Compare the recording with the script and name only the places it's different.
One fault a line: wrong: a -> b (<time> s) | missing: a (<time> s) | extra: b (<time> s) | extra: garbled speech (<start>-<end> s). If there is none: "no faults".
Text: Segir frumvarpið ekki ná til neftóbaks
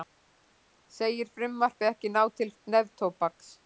no faults